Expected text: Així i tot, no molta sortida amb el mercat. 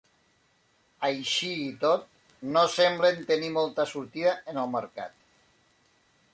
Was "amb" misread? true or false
true